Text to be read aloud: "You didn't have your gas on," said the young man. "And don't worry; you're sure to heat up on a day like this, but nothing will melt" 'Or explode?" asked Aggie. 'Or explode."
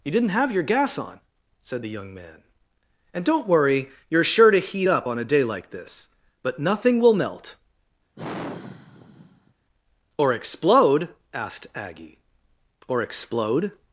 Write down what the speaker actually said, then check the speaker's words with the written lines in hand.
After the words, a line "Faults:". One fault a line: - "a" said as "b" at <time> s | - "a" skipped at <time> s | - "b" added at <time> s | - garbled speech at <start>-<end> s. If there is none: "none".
"You didn't have your gas on," said the young man. "And don't worry; you're sure to heat up on a day like this, but nothing will melt" 'Or explode?" asked Aggie. 'Or explode."
Faults:
none